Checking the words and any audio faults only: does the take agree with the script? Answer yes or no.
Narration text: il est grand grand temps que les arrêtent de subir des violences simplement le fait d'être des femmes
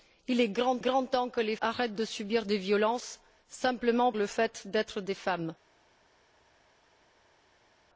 yes